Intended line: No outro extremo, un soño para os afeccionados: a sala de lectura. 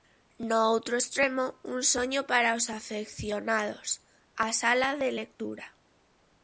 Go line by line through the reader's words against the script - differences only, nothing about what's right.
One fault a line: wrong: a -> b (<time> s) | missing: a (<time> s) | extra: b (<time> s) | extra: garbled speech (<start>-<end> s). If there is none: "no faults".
no faults